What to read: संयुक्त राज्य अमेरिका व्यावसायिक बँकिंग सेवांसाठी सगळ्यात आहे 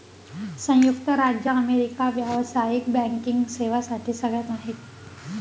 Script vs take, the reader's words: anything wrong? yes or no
no